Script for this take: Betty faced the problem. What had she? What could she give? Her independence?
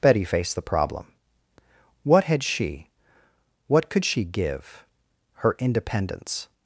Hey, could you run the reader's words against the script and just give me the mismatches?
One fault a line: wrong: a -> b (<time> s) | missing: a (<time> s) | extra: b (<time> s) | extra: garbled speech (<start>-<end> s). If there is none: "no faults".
no faults